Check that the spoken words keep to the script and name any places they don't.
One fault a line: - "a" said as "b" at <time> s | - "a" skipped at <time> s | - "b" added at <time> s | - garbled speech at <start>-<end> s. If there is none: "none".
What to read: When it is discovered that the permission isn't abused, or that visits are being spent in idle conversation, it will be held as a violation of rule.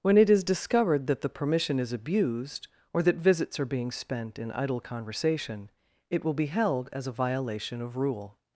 - "isn't" said as "is" at 1.8 s